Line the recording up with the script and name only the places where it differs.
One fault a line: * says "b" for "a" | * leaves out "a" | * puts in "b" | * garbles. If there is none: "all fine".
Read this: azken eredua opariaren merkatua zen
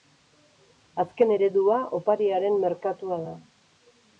* says "da" for "zen"